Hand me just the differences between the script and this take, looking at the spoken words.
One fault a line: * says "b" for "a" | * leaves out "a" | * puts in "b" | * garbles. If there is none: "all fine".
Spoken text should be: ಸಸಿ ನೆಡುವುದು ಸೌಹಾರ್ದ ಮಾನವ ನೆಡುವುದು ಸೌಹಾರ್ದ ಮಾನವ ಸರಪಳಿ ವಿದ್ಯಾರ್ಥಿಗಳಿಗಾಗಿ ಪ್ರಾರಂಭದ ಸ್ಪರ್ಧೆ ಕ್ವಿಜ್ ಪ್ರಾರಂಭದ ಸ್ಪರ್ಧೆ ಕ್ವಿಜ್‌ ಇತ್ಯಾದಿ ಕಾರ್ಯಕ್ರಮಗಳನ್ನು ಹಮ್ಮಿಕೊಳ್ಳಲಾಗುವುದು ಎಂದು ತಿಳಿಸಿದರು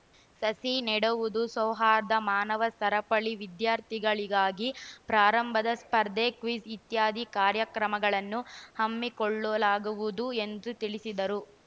* leaves out "ನೆಡುವುದು ಸೌಹಾರ್ದ ಮಾನವ"
* leaves out "ಪ್ರಾರಂಭದ ಸ್ಪರ್ಧೆ ಕ್ವಿಜ್"